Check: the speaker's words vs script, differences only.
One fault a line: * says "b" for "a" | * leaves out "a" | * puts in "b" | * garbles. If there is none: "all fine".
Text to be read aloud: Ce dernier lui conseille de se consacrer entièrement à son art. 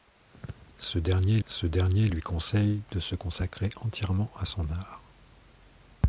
* puts in "ce dernier"